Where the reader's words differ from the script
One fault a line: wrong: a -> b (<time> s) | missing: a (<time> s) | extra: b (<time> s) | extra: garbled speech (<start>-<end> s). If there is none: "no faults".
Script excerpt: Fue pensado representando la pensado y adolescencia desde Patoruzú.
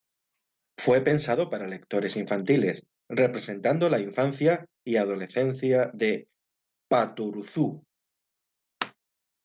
extra: para lectores infantiles (1.5 s)
wrong: pensado -> infancia (4.0 s)
wrong: desde -> de (5.9 s)